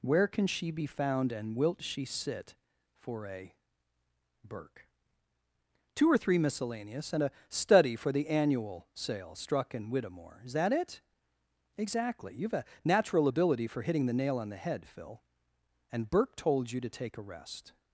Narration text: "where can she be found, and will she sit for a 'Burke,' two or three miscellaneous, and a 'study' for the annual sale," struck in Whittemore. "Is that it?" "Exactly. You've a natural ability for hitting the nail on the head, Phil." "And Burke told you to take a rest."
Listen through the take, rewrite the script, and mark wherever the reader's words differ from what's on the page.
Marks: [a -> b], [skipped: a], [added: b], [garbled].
"where can she be found, and [will -> wilt] she sit for a 'Burke,' two or three miscellaneous, and a 'study' for the annual sale," struck in Whittemore. "Is that it?" "Exactly. You've a natural ability for hitting the nail on the head, Phil." "And Burke told you to take a rest."